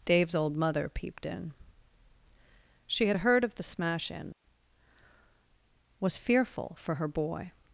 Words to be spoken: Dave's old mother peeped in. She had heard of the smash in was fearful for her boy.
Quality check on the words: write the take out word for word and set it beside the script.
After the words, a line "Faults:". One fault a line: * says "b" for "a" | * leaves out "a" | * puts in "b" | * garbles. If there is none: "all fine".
Dave's old mother peeped in. She had heard of the smash in was fearful for her boy.
Faults:
all fine